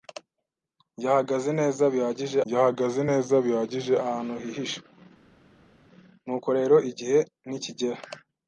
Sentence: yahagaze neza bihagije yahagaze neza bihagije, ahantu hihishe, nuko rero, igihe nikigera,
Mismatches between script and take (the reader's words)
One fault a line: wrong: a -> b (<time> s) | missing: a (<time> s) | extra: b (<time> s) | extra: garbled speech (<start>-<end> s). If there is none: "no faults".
no faults